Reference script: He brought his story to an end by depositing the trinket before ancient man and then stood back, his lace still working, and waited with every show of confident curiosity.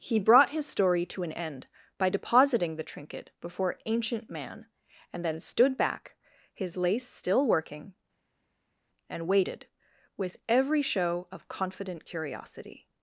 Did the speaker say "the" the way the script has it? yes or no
yes